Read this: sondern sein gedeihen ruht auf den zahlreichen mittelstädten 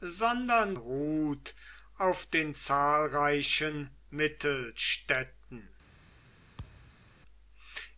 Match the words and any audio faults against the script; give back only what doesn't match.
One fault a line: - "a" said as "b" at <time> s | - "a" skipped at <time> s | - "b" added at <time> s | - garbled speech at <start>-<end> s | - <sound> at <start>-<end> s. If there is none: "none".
- "sein gedeihen" skipped at 0.8 s
- thud at 6.6-7.1 s